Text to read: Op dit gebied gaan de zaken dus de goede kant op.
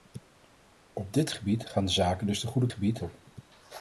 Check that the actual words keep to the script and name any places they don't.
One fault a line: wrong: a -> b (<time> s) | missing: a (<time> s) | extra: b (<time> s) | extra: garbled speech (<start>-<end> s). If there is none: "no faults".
wrong: kant -> gebied (2.7 s)